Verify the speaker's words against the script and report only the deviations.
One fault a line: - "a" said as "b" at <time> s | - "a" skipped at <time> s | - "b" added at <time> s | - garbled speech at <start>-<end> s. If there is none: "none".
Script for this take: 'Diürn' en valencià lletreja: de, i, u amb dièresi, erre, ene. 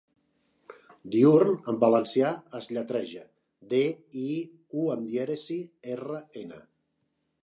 - "es" added at 2.6 s